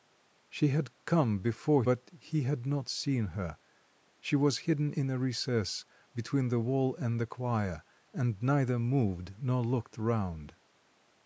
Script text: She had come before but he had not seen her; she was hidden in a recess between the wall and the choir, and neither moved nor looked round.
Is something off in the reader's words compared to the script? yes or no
no